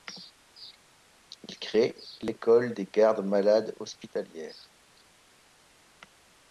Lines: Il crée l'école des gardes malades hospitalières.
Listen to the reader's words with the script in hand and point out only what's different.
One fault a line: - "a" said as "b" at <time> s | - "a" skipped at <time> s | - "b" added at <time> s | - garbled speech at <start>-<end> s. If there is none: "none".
none